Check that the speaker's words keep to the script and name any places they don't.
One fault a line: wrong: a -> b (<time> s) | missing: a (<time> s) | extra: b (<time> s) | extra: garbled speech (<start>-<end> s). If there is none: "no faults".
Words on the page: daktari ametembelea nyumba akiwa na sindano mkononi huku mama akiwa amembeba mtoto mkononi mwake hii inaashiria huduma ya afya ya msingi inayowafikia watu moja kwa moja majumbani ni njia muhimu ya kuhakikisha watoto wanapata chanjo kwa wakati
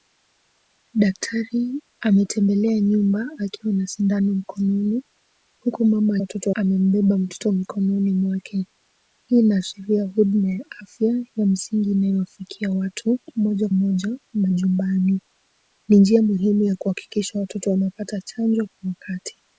wrong: akiwa -> watoto (6.2 s)
missing: kwa (13.7 s)